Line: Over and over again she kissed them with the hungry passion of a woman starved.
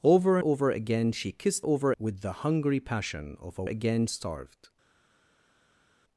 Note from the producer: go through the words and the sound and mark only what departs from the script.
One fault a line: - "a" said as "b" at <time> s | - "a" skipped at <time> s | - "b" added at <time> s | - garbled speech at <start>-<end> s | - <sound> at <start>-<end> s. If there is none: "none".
- "and" skipped at 0.4 s
- "them" said as "over" at 1.6 s
- "woman" said as "again" at 3.6 s